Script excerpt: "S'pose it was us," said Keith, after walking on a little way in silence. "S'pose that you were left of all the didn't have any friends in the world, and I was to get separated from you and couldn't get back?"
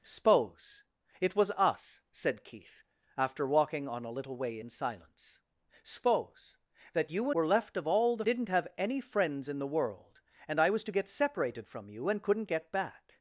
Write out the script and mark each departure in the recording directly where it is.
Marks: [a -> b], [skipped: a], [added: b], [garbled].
"S'pose it was us," said Keith, after walking on a little way in silence. "S'pose that you were left of all the didn't have any friends in the world, and I was to get separated from you and couldn't get back?"